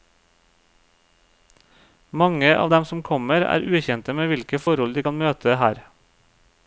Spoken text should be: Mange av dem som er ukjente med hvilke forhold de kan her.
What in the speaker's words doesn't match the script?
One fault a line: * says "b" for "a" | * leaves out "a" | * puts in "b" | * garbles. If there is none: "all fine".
* puts in "kommer"
* puts in "møte"